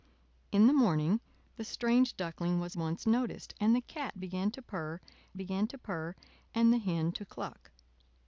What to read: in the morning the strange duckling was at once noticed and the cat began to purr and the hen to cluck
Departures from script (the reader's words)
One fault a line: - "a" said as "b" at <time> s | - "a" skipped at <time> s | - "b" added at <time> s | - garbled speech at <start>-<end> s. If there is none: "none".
- "at" skipped at 2.8 s
- "began to purr" added at 5.4 s